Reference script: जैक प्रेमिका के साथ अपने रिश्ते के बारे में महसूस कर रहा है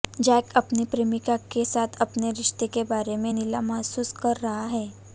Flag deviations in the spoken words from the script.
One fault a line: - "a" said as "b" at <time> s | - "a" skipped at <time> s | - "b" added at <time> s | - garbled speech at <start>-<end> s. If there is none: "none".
- "अपनी" added at 0.6 s
- "नीला" added at 3.3 s